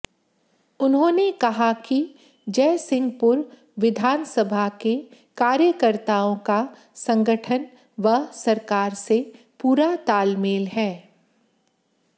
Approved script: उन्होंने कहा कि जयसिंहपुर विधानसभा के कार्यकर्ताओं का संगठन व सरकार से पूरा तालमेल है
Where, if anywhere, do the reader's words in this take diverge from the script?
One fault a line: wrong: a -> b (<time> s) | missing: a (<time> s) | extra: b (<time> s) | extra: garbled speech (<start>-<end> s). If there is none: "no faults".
no faults